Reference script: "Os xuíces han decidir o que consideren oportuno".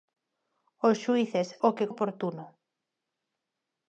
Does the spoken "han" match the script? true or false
false